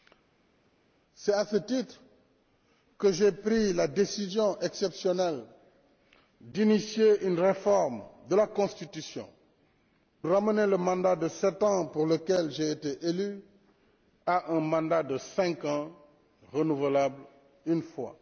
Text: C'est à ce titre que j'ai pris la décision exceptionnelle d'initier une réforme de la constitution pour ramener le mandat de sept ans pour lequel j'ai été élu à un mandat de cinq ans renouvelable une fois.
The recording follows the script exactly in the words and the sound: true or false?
false